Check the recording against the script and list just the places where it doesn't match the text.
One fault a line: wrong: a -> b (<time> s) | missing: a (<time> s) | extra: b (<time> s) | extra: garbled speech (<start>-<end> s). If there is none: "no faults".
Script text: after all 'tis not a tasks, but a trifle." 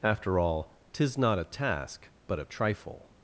wrong: tasks -> task (1.4 s)